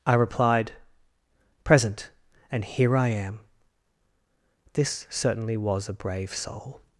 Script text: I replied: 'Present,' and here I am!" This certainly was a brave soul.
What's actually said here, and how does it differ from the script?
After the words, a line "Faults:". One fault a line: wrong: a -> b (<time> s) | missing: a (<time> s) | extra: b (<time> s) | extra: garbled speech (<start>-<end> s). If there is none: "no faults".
I replied: 'Present,' and here I am!" This certainly was a brave soul.
Faults:
no faults